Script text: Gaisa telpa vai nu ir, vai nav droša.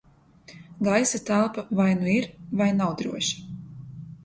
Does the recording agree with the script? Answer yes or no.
yes